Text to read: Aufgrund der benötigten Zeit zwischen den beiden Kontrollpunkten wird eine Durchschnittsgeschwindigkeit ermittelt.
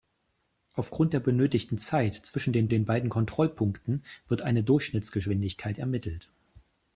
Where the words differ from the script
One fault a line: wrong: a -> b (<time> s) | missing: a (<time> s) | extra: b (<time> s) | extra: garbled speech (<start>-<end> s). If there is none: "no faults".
extra: den (2.7 s)